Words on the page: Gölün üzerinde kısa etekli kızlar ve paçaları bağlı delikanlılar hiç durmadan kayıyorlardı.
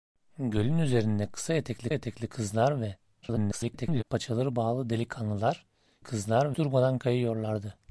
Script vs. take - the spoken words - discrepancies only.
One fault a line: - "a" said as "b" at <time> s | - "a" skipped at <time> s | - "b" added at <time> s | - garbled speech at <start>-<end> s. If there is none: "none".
- "etekli" added at 1.9 s
- garbled speech at 3.2-4.0 s
- "hiç" said as "kızlar" at 6.0 s